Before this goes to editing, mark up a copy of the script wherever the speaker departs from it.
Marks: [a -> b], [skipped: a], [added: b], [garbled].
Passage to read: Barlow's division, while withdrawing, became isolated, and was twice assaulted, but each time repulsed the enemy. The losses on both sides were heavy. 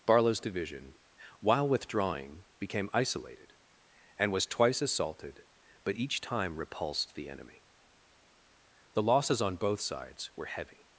Barlow's division, while withdrawing, became isolated, and was twice assaulted, but each time repulsed the enemy. The losses on both sides were heavy.